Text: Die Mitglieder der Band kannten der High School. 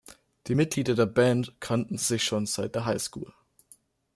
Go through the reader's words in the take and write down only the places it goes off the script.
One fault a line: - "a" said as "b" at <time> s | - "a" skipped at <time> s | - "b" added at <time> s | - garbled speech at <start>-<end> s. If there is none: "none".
- "sich schon seit" added at 2.0 s